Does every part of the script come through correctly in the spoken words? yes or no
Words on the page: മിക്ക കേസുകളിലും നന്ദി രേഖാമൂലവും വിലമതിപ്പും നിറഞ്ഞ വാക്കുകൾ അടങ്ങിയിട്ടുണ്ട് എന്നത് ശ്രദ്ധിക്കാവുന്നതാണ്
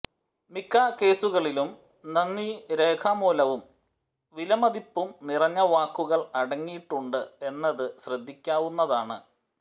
yes